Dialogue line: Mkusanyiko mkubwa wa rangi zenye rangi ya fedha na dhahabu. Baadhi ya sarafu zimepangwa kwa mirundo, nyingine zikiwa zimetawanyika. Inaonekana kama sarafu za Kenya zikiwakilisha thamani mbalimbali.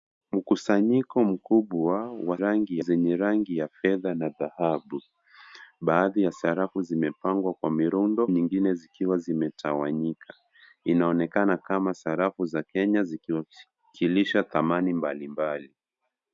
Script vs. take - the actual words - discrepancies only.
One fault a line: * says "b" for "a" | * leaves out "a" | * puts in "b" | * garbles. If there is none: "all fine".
all fine